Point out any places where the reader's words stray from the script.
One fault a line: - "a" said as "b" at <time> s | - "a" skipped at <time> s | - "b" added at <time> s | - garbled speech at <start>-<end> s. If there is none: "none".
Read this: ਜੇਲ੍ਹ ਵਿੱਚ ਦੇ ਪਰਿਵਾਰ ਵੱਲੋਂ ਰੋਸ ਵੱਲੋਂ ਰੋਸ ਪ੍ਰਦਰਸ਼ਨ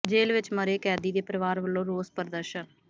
- "ਮਰੇ ਕੈਦੀ" added at 0.5 s
- "ਵੱਲੋਂ ਰੋਸ" skipped at 2.1 s